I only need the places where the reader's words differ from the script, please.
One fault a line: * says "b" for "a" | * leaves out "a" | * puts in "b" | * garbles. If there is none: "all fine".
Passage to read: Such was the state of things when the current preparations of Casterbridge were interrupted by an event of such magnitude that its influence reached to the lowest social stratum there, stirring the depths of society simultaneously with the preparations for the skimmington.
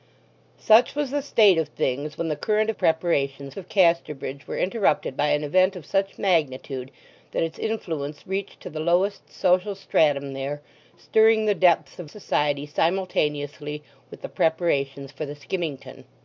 all fine